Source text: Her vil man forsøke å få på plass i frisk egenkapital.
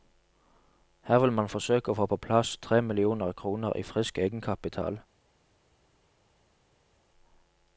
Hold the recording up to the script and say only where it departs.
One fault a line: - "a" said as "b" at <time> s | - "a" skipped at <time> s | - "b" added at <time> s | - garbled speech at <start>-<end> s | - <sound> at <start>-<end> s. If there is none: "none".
- "tre millioner kroner" added at 2.6 s